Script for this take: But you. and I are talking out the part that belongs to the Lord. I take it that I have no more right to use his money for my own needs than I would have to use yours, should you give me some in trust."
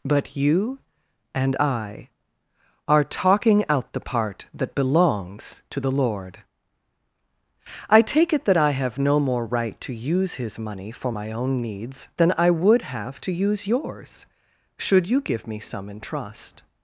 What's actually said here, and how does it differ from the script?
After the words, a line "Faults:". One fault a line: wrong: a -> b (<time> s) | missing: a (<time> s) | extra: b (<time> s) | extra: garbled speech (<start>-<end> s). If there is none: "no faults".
But you. and I are talking out the part that belongs to the Lord. I take it that I have no more right to use his money for my own needs than I would have to use yours, should you give me some in trust."
Faults:
no faults